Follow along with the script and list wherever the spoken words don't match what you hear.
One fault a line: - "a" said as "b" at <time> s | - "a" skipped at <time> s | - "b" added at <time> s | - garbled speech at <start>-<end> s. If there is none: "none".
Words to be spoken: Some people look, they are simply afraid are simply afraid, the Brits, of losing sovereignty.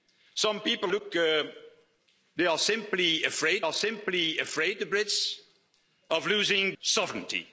none